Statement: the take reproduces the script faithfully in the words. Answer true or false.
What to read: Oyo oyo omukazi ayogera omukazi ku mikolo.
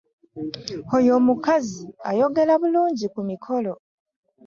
false